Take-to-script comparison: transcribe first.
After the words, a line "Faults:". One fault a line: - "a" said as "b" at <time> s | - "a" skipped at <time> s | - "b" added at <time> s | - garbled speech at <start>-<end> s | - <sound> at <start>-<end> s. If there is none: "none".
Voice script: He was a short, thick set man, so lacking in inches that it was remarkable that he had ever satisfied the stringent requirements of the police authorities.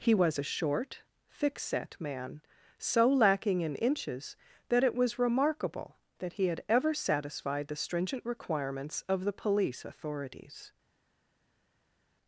He was a short, thick set man, so lacking in inches that it was remarkable that he had ever satisfied the stringent requirements of the police authorities.
Faults:
none